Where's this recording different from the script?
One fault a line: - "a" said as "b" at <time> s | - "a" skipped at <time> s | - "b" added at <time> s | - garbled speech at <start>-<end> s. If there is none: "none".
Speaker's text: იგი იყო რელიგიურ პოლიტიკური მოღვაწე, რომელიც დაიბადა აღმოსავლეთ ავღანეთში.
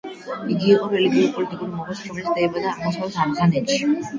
none